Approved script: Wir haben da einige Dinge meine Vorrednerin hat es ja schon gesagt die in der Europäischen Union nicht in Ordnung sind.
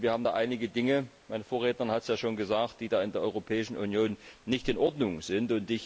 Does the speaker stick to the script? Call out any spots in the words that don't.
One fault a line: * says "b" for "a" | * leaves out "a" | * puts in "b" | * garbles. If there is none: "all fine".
all fine